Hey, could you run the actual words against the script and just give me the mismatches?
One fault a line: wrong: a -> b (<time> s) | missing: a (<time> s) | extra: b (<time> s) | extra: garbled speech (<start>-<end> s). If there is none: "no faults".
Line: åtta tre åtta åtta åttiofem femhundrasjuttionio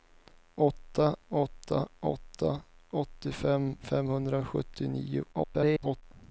missing: tre (1.1 s)
extra: garbled speech (5.3-6.0 s)